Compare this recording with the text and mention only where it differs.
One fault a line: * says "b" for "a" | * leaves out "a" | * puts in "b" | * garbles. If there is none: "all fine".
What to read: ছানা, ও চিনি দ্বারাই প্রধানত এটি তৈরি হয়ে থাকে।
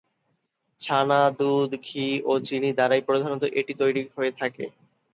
* puts in "দুধ ঘি"